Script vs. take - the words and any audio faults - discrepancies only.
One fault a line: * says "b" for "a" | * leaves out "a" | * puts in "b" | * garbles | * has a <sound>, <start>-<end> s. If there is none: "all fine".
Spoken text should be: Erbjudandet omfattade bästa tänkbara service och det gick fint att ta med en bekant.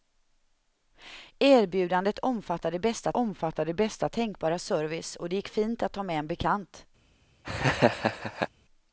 * puts in "omfattade bästa"
* has a laugh, 7.4-8.5 s